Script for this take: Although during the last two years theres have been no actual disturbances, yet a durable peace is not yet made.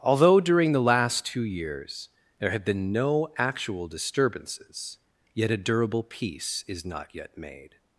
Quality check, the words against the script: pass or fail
fail